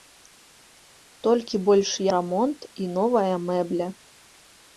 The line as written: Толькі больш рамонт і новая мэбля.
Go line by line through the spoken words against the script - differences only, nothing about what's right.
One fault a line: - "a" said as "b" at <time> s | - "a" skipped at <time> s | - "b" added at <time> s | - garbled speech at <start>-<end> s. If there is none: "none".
none